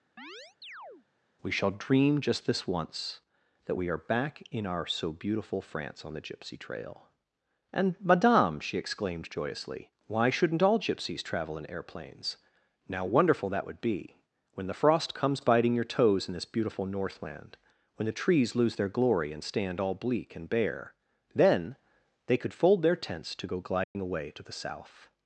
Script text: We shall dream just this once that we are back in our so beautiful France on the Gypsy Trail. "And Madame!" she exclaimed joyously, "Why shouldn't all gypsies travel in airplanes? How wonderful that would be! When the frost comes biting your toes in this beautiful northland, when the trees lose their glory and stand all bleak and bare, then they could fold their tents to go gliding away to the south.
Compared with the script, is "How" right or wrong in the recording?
wrong